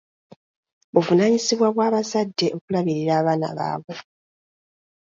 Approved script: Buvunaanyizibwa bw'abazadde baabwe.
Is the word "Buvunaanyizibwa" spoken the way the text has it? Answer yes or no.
yes